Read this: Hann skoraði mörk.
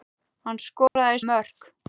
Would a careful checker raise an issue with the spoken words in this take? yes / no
no